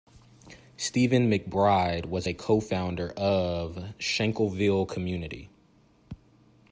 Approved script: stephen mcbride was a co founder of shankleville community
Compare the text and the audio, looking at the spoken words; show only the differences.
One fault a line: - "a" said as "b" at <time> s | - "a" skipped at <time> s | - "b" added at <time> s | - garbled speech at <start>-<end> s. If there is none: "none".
none